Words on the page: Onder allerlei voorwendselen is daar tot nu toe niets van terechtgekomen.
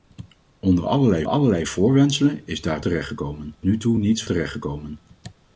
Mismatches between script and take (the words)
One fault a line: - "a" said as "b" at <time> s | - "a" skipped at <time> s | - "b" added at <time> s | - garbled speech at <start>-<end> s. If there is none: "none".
- "allerlei" added at 1.3 s
- "tot" said as "terechtgekomen" at 2.8 s
- "van" skipped at 4.2 s